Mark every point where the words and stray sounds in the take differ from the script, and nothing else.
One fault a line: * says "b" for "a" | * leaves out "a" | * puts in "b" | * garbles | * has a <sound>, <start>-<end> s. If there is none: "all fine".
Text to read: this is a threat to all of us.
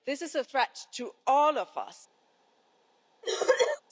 * has a cough, 3.2-3.8 s